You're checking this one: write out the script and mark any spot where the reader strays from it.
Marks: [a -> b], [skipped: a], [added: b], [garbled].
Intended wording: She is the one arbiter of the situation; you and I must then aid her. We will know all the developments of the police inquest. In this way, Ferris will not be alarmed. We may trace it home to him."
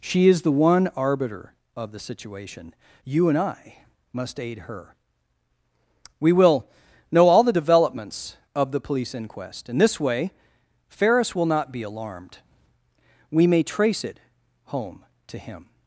She is the one arbiter of the situation; you and I must [skipped: then] aid her. We will know all the developments of the police inquest. In this way, Ferris will not be alarmed. We may trace it home to him."